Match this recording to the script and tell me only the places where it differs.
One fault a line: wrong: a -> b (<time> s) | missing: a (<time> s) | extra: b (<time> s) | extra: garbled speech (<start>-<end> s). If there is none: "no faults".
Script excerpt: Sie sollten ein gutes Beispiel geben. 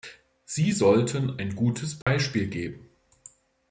no faults